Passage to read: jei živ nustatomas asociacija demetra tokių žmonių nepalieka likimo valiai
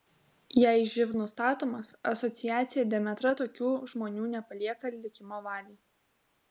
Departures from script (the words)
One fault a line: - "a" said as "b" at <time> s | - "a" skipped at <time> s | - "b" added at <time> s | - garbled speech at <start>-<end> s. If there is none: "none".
none